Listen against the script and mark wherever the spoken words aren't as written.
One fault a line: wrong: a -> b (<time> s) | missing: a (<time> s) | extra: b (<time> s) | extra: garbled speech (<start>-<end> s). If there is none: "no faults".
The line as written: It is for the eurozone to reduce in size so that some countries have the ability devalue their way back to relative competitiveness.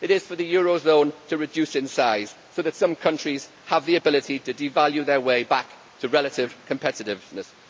extra: to (4.4 s)